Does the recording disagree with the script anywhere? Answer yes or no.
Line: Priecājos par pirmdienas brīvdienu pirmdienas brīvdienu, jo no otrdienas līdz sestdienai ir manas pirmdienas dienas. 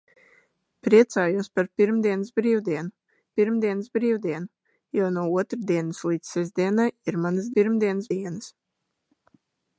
no